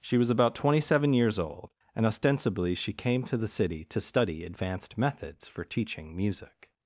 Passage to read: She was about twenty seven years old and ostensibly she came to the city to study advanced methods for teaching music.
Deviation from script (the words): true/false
false